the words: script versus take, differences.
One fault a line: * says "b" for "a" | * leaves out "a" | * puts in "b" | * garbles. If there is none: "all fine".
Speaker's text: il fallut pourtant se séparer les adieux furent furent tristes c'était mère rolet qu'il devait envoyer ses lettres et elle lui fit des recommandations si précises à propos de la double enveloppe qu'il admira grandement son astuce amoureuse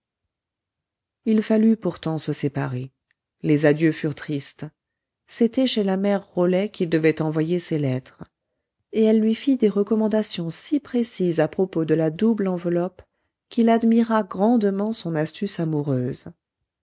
* leaves out "furent"
* puts in "chez la"